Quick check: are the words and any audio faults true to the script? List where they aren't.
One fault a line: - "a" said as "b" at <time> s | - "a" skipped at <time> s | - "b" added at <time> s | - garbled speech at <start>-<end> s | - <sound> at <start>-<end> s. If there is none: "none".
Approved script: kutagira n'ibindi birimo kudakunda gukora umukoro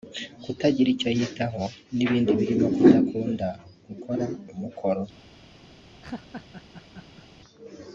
- "icyo yitaho" added at 0.9 s
- laugh at 6.0-7.3 s